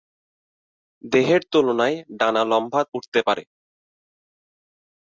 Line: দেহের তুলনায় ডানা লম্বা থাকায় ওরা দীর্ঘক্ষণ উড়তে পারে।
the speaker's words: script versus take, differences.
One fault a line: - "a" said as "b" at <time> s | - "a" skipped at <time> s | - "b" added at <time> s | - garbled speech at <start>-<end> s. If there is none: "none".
- "থাকায় ওরা দীর্ঘক্ষণ" skipped at 2.8 s